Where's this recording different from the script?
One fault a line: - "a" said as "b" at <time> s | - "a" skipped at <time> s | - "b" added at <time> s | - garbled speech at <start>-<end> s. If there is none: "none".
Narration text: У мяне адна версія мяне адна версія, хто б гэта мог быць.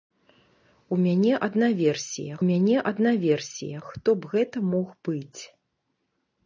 none